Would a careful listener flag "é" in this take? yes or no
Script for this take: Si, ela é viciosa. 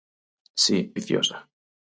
yes